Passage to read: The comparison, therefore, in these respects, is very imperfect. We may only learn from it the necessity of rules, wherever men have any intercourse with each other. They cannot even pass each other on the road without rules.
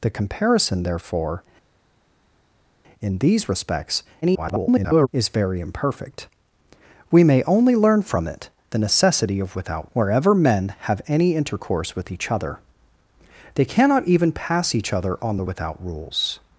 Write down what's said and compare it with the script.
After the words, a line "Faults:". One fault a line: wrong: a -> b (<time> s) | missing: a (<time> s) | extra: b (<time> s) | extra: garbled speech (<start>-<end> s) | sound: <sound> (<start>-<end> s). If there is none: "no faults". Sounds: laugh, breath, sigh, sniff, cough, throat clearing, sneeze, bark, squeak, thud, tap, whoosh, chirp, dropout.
The comparison, therefore, in these respects, [garbled] is very imperfect. We may only learn from it the necessity of without, wherever men have any intercourse with each other. They cannot even pass each other on the without rules.
Faults:
extra: garbled speech (4.2-5.1 s)
wrong: rules -> without (9.6 s)
missing: road (15.4 s)